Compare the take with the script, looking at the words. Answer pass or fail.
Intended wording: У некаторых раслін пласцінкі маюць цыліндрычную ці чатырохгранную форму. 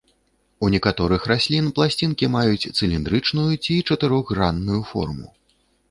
pass